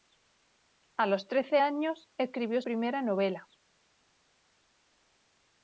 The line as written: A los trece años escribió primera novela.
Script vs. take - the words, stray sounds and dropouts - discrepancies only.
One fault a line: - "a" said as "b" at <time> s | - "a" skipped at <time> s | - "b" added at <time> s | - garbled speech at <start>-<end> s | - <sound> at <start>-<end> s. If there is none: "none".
none